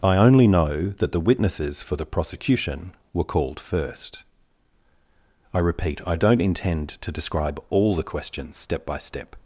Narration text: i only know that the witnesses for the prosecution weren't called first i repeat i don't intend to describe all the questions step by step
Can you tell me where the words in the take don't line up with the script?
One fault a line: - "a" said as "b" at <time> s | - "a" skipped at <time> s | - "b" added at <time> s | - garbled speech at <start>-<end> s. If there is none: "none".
- "weren't" said as "were" at 3.1 s